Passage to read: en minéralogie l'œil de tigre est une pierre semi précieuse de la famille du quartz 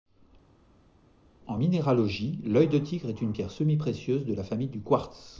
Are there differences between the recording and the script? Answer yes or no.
no